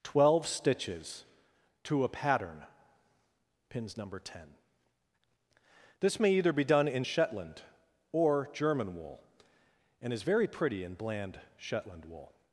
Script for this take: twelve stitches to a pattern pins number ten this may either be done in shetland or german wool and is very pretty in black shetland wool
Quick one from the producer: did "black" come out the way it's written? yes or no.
no